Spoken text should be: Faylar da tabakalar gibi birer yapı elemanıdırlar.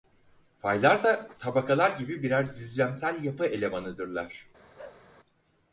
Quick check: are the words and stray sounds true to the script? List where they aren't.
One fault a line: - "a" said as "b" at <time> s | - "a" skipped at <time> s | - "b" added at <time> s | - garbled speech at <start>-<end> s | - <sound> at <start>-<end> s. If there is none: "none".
- "düzlemsel" added at 2.5 s
- bark at 4.8-5.1 s